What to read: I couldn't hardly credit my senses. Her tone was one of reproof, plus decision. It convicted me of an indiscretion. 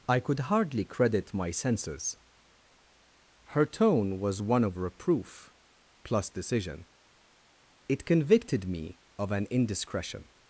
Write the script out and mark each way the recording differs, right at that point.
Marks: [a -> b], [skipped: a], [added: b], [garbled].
I [couldn't -> could] hardly credit my senses. Her tone was one of reproof, plus decision. It convicted me of an indiscretion.